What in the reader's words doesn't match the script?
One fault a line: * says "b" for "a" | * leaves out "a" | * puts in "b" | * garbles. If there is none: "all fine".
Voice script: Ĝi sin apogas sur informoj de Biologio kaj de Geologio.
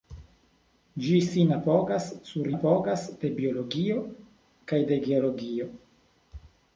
* says "apogas" for "informoj"